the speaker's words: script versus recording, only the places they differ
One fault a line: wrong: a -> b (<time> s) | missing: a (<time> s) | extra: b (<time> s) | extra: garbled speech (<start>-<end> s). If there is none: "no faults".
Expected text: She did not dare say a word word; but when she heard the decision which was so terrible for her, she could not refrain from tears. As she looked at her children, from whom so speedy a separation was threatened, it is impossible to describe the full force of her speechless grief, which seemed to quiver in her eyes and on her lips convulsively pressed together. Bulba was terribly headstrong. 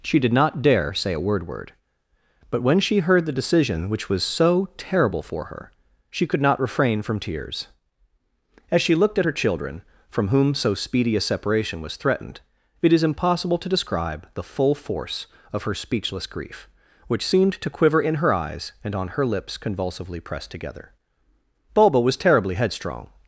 no faults